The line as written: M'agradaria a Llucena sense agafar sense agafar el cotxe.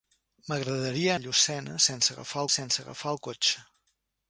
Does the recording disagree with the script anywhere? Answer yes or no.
no